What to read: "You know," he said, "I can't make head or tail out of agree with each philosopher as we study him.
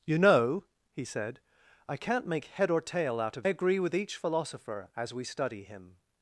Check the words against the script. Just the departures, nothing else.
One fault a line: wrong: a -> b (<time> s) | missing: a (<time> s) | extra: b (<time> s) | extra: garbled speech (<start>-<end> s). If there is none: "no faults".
no faults